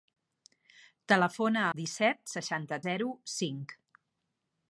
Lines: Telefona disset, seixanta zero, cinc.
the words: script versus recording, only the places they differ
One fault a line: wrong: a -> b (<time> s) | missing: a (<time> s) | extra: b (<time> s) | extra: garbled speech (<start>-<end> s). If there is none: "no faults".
no faults